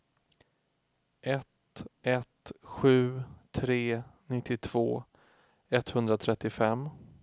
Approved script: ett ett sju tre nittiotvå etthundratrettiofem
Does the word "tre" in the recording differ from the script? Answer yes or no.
no